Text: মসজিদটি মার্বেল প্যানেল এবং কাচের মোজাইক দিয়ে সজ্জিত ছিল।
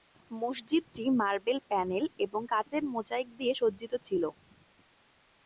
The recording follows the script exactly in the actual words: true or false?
true